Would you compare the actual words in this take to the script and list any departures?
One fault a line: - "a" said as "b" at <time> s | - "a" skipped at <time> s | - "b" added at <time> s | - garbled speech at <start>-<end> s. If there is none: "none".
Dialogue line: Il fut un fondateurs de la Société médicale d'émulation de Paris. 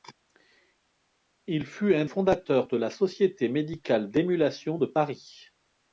none